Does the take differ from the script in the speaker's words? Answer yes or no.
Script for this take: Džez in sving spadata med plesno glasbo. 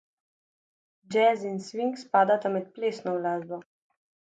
no